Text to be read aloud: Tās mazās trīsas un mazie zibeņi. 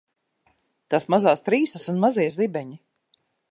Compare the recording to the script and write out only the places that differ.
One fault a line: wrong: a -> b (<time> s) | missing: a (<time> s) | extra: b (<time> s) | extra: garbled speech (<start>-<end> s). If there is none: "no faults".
no faults